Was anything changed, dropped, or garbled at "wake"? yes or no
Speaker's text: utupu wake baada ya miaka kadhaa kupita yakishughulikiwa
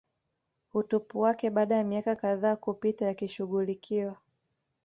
no